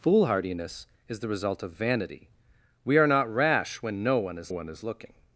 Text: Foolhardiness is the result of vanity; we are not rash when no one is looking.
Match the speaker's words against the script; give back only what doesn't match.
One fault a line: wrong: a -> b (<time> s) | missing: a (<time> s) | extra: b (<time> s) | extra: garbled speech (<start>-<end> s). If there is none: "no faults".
extra: one is (4.5 s)